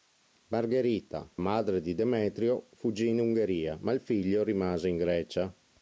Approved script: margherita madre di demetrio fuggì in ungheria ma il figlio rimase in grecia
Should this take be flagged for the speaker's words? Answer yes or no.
no